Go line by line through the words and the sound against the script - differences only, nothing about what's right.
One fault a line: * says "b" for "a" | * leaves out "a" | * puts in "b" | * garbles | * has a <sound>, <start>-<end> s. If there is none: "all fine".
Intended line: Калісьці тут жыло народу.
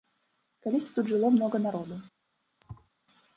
* puts in "многа"
* has a thud, 2.6-2.9 s